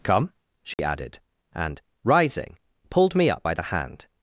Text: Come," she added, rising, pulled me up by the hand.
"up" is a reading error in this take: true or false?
false